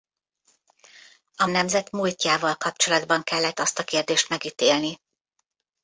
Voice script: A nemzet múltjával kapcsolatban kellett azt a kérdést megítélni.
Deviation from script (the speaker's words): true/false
false